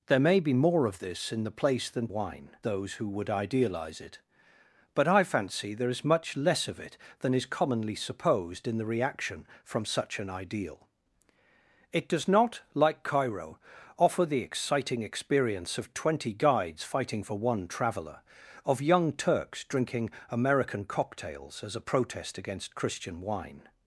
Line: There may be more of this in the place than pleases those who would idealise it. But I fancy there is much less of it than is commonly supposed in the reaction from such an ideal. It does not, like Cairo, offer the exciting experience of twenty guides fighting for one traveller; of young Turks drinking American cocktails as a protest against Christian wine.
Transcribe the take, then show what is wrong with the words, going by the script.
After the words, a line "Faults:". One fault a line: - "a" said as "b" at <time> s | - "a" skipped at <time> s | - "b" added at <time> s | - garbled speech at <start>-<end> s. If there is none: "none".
There may be more of this in the place than wine those who would idealise it. But I fancy there is much less of it than is commonly supposed in the reaction from such an ideal. It does not, like Cairo, offer the exciting experience of twenty guides fighting for one traveller; of young Turks drinking American cocktails as a protest against Christian wine.
Faults:
- "pleases" said as "wine" at 2.1 s